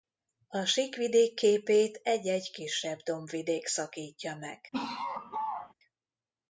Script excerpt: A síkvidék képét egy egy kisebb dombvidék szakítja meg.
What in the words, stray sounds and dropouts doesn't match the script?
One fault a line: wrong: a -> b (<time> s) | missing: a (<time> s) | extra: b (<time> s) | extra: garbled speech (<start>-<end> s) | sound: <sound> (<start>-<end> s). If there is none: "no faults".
sound: laugh (4.7-5.7 s)